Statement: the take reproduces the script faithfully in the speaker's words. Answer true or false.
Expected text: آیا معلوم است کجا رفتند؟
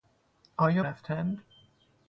false